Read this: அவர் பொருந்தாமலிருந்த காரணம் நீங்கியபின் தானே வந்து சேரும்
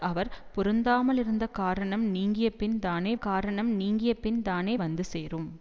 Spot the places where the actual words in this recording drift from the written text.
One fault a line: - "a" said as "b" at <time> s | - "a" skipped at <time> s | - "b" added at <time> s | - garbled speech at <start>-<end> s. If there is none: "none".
- "காரணம் நீங்கியபின் தானே" added at 3.2 s